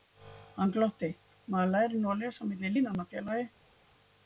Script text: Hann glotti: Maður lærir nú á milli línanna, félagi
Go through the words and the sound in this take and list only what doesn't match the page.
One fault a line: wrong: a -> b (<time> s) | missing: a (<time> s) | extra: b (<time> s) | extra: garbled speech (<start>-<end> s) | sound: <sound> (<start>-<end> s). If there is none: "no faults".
extra: að lesa (2.1 s)